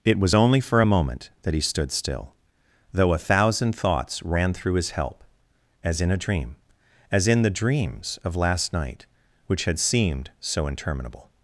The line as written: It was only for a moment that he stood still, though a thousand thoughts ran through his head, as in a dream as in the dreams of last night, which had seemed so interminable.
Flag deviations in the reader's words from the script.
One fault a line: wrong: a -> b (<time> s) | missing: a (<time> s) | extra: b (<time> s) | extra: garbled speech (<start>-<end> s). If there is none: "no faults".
wrong: head -> help (4.9 s)